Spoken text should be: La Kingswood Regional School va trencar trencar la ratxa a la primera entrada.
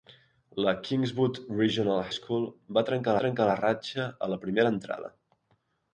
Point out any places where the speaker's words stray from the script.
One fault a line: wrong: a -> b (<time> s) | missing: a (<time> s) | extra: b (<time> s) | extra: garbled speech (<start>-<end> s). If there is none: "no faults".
no faults